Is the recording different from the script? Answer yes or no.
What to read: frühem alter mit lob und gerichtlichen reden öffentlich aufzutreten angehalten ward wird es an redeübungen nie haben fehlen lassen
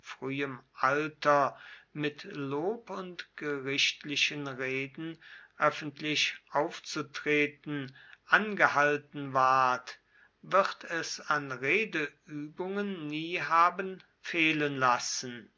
no